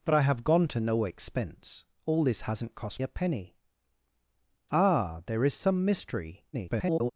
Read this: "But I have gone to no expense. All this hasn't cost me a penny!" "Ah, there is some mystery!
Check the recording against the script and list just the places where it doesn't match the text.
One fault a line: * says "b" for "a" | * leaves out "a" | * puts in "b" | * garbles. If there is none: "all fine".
* leaves out "me"
* garbles